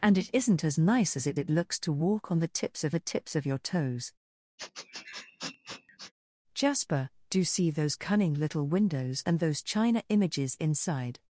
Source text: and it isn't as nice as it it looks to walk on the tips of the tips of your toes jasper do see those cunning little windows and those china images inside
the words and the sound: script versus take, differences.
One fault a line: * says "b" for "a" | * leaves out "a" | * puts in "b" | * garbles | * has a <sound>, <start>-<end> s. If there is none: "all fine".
* has a sniff, 4.6-6.1 s